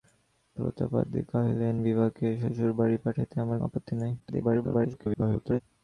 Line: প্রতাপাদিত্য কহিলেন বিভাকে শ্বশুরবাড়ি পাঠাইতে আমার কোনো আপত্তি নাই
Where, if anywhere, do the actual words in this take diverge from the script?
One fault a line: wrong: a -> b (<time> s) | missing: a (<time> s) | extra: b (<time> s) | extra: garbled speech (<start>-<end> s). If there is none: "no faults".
missing: কোনো (3.6 s)
extra: garbled speech (4.2-5.6 s)